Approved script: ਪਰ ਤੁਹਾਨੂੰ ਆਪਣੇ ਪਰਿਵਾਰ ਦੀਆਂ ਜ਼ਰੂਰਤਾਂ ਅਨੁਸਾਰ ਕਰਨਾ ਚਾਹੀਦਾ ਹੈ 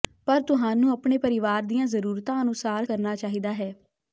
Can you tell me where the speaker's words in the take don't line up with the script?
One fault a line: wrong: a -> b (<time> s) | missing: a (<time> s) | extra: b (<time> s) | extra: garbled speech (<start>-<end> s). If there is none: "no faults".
no faults